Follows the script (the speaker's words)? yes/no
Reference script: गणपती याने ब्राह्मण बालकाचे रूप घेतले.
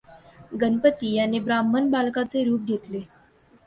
yes